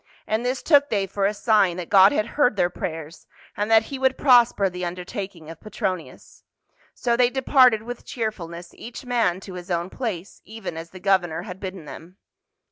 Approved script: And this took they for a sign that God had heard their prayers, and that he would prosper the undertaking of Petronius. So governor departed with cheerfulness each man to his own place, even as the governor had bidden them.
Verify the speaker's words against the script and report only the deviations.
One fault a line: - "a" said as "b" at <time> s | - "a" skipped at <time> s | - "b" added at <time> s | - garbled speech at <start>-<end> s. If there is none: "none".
- "governor" said as "they" at 7.2 s